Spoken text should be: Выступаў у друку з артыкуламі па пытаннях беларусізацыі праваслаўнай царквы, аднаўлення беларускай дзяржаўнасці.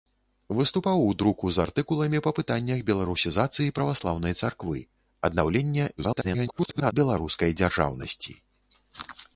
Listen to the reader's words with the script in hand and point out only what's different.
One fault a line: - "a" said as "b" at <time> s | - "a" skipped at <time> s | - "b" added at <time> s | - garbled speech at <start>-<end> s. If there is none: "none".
- garbled speech at 6.0-6.9 s